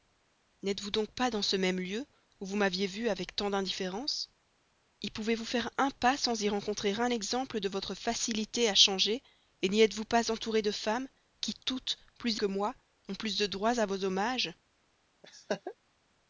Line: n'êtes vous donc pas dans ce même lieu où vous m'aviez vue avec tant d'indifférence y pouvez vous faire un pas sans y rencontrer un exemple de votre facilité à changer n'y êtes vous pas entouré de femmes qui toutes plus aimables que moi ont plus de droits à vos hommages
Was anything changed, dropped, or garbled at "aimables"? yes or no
yes